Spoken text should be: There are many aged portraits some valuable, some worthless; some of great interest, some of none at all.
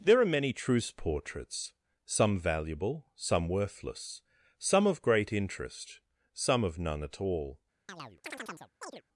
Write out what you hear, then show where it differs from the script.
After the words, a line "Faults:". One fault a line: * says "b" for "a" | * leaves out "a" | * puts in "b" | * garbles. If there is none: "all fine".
There are many truce portraits some valuable, some worthless; some of great interest, some of none at all.
Faults:
* says "truce" for "aged"